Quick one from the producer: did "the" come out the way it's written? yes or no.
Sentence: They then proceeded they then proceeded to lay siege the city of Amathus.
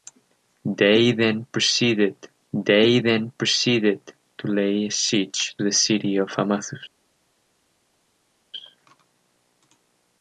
yes